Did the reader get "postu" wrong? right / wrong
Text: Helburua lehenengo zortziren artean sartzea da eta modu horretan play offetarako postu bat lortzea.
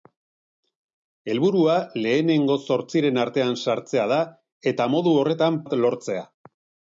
wrong